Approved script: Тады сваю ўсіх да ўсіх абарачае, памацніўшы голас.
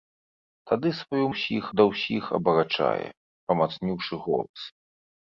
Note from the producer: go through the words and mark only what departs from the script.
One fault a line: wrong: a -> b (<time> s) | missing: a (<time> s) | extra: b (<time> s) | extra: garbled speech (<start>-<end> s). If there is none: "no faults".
no faults